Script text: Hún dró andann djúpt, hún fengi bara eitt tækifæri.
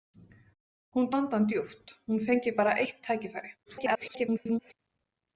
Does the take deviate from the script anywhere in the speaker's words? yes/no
yes